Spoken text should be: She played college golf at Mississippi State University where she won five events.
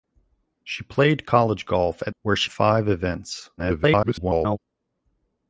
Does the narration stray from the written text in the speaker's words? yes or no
yes